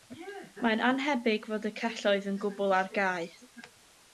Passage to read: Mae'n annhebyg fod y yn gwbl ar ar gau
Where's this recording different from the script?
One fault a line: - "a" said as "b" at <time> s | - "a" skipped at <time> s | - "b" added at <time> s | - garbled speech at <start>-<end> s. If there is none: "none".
- "celloedd" added at 1.8 s
- "ar" skipped at 2.9 s